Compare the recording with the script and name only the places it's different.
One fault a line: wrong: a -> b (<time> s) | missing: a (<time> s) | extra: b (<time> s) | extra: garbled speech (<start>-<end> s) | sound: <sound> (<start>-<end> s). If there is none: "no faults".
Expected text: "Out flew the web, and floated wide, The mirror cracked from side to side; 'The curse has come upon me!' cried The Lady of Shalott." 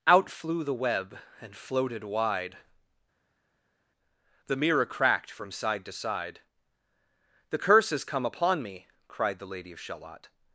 no faults